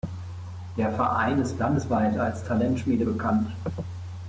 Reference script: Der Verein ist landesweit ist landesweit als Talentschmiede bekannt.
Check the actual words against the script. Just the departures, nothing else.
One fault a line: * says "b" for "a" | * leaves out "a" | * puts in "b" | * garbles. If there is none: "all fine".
* leaves out "ist landesweit"